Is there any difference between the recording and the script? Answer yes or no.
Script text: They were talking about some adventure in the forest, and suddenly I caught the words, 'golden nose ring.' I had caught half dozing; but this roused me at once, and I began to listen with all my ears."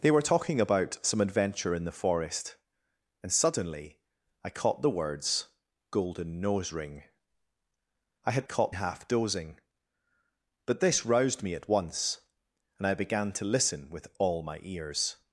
no